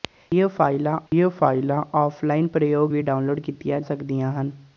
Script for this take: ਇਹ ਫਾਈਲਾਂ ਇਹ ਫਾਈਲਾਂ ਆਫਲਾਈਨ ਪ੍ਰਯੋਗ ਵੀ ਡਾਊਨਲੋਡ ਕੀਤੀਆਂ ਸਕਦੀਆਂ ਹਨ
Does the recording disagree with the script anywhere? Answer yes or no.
no